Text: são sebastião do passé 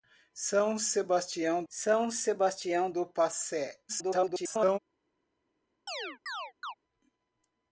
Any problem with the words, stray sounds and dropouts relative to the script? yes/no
yes